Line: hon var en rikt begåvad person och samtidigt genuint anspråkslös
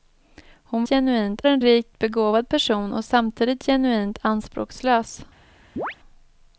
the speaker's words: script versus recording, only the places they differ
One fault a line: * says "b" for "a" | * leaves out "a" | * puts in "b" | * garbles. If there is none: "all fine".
* says "genuint" for "var"